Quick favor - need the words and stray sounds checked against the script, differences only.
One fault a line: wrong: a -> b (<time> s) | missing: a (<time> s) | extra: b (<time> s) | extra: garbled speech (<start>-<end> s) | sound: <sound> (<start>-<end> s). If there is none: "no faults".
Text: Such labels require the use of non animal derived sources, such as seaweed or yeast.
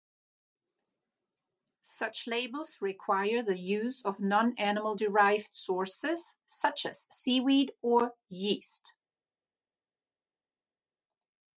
no faults